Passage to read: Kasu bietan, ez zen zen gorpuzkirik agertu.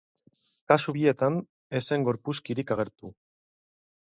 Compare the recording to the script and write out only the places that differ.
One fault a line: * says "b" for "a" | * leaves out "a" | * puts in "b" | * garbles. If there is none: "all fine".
* leaves out "zen"